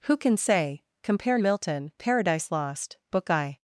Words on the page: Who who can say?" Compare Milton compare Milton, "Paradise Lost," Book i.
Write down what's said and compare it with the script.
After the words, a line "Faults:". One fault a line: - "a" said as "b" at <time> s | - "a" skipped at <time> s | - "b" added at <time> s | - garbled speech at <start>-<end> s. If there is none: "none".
Who can say?" Compare Milton, "Paradise Lost," Book i.
Faults:
- "who" skipped at 0.2 s
- "compare Milton" skipped at 1.9 s